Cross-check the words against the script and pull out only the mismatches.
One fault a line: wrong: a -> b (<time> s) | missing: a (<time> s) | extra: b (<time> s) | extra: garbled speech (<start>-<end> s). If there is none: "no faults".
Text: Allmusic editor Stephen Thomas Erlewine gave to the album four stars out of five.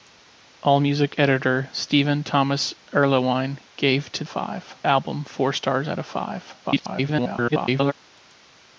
wrong: the -> five (4.3 s)
extra: garbled speech (6.6-7.9 s)